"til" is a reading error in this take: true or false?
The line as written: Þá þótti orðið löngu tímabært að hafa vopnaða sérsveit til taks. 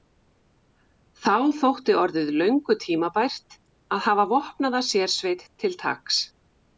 false